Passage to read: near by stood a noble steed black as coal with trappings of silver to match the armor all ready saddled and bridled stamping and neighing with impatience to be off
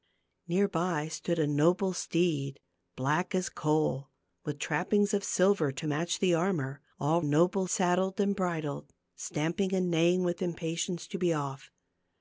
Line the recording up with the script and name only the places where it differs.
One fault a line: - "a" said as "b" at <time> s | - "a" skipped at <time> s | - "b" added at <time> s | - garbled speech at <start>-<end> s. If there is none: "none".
- "ready" said as "noble" at 7.2 s